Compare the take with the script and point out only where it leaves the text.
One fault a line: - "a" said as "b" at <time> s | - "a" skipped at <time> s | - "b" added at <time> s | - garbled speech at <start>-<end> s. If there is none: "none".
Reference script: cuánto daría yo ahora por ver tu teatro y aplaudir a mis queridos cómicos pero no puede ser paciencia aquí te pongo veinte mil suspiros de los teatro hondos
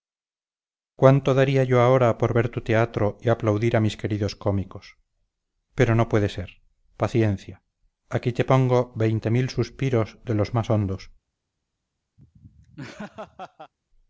- "teatro" said as "más" at 10.5 s